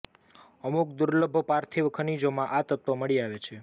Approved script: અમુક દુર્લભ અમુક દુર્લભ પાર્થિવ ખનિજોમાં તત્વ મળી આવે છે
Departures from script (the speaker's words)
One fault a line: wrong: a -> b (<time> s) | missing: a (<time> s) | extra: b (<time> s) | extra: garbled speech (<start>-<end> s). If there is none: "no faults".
missing: અમુક દુર્લભ (1.4 s)
extra: આ (2.5 s)